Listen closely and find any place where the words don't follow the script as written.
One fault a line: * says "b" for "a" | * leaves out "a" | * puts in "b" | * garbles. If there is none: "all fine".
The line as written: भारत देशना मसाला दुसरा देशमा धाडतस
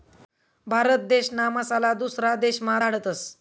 all fine